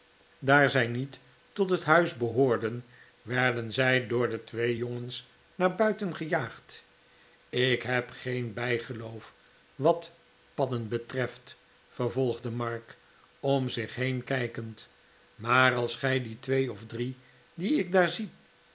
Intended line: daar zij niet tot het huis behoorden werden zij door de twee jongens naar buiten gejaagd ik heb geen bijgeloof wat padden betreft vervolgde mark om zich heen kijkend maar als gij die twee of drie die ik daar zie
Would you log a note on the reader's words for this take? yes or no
no